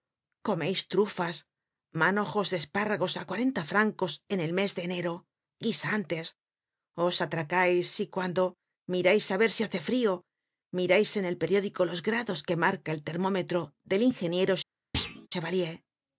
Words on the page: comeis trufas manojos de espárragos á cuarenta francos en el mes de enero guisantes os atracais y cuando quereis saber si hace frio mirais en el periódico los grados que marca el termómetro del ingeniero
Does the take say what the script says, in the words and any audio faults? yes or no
no